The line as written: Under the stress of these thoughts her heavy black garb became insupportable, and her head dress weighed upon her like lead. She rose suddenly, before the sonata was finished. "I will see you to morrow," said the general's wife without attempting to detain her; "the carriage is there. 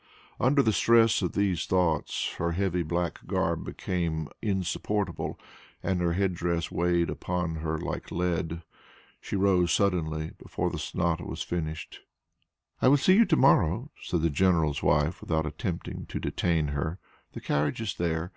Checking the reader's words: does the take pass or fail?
pass